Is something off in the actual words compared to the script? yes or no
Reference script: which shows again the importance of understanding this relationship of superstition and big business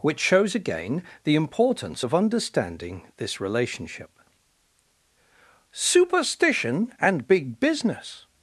yes